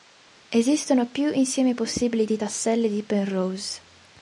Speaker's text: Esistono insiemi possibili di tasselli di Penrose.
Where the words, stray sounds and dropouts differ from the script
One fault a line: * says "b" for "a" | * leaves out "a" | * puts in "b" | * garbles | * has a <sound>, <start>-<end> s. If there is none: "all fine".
* puts in "più"